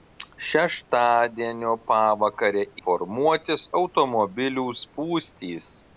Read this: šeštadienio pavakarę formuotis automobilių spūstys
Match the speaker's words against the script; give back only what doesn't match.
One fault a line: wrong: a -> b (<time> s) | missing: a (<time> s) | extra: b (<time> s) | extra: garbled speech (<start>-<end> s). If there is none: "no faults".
no faults